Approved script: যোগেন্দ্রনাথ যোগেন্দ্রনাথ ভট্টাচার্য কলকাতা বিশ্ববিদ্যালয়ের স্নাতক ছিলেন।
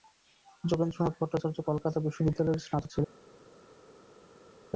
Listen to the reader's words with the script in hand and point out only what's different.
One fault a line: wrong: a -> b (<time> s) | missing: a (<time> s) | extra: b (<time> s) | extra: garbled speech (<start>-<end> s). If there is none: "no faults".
missing: যোগেন্দ্রনাথ (1.1 s)